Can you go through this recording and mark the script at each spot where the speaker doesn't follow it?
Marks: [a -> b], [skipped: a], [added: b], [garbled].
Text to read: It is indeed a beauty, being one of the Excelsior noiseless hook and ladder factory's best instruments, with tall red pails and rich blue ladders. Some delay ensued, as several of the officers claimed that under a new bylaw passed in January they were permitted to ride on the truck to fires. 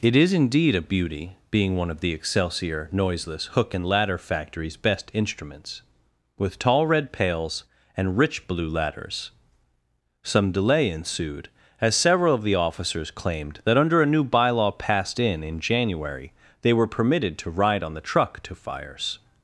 It is indeed a beauty, being one of the Excelsior noiseless hook and ladder factory's best instruments, with tall red pails and rich blue ladders. Some delay ensued, as several of the officers claimed that under a new bylaw passed in [added: in] January they were permitted to ride on the truck to fires.